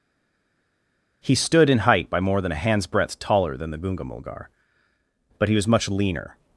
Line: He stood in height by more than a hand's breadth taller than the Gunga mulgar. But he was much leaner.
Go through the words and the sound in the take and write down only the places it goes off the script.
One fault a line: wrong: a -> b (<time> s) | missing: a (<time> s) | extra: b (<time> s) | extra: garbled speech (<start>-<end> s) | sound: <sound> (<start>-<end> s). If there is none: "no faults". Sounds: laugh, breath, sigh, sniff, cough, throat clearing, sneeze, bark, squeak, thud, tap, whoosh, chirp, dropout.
no faults